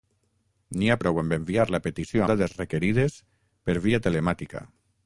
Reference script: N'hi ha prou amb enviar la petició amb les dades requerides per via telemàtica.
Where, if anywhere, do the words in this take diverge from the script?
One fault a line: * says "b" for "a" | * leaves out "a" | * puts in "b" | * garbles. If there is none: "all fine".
* leaves out "amb les"